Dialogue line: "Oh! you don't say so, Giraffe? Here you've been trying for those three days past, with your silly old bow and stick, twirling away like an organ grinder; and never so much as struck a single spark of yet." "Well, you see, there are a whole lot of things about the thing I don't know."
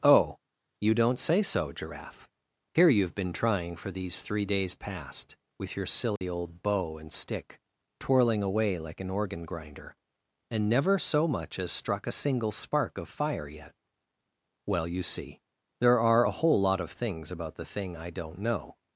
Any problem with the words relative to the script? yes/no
yes